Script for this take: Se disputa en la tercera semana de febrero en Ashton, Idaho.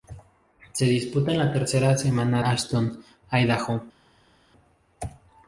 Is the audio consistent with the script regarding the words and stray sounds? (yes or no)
no